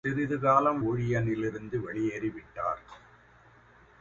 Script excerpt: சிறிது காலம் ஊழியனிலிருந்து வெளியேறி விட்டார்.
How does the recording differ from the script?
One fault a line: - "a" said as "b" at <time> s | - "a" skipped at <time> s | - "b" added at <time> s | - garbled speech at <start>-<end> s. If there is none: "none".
none